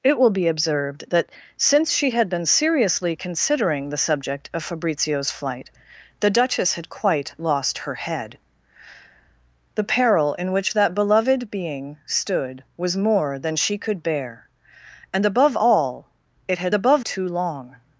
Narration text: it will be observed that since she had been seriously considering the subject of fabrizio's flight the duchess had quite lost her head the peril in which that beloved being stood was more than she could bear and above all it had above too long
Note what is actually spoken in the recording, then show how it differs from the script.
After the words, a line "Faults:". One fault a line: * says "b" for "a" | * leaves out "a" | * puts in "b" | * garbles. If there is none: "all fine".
it will be observed that since she had been seriously considering the subject of fabrizio's flight the duchess had quite lost her head the peril in which that beloved being stood was more than she could bear and above all it had above too long
Faults:
all fine